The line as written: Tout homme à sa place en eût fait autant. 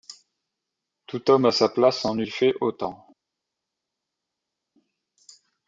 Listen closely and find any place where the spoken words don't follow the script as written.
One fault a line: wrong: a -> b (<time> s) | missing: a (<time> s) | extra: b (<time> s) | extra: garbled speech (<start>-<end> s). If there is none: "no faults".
no faults